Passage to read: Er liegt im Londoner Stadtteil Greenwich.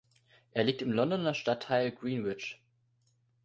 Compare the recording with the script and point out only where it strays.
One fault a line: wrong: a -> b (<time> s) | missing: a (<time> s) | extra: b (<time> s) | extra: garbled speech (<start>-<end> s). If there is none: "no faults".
no faults